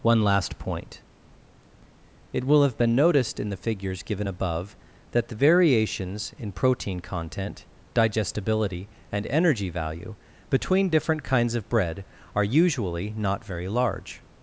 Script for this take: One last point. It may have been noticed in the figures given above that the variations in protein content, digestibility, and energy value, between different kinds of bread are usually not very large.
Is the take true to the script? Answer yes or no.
no